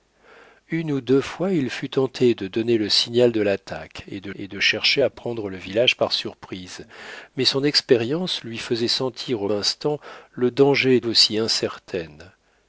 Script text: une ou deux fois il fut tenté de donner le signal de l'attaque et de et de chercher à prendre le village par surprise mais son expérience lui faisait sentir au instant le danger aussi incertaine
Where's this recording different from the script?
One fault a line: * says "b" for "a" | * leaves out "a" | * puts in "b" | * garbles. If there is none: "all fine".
all fine